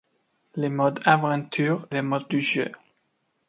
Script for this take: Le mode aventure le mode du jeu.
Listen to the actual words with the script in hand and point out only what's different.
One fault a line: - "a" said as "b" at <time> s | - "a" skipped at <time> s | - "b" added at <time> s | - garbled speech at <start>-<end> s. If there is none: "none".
none